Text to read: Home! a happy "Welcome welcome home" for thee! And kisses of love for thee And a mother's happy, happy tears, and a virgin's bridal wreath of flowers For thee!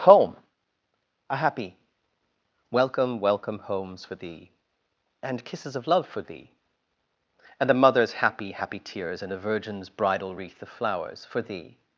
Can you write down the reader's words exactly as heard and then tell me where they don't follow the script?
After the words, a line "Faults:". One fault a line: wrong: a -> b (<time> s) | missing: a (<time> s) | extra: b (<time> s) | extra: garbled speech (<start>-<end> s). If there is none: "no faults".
Home! a happy "Welcome welcome homes" for thee! And kisses of love for thee And a mother's happy, happy tears, and a virgin's bridal wreath of flowers For thee!
Faults:
wrong: home -> homes (3.6 s)